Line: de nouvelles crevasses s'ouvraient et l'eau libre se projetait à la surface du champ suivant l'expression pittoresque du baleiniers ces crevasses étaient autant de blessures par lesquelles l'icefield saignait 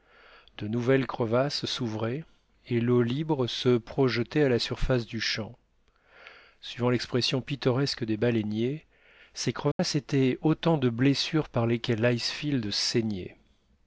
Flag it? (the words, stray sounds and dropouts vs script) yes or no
yes